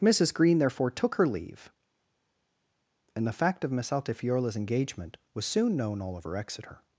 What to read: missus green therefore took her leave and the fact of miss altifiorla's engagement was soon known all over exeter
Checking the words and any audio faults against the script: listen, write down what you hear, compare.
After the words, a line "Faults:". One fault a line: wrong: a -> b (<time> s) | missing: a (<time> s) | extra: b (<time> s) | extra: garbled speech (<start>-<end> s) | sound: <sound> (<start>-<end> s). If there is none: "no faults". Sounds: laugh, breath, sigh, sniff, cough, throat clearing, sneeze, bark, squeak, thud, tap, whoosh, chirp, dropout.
missus green therefore took her leave and the fact of miss altifiorla's engagement was soon known all over exeter
Faults:
no faults